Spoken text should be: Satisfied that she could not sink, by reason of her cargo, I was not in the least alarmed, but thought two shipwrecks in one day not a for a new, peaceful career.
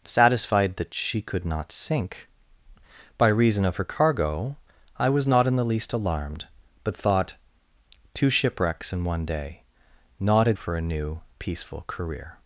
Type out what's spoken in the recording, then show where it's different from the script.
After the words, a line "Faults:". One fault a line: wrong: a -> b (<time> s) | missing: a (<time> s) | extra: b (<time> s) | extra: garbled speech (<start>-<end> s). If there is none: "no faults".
Satisfied that she could not sink, by reason of her cargo, I was not in the least alarmed, but thought two shipwrecks in one day not a for a new, peaceful career.
Faults:
no faults